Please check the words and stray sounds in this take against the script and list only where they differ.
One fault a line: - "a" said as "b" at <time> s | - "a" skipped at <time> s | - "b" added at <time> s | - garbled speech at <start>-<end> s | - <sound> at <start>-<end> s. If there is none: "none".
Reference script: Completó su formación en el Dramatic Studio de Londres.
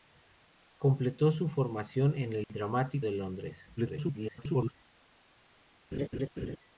- dropout at 2.4-2.5 s
- "Studio" skipped at 3.1 s
- garbled speech at 3.8-4.7 s
- laugh at 5.9-6.6 s